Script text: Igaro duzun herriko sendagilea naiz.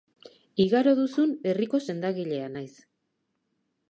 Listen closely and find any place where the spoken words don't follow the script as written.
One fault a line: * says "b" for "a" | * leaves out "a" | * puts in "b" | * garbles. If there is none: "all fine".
all fine